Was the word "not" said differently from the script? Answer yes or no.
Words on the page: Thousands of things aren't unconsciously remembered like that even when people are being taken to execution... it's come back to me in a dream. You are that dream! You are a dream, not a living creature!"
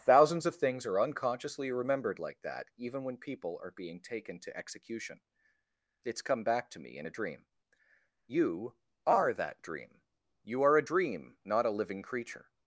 no